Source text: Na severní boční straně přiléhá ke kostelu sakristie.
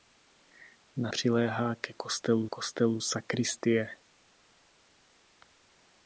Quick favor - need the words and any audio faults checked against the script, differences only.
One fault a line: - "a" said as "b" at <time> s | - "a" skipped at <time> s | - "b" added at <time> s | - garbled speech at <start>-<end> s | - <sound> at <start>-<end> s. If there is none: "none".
- "severní boční straně" skipped at 1.1 s
- "kostelu" added at 2.4 s